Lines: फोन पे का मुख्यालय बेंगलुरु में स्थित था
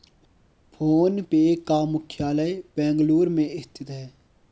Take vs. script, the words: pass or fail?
fail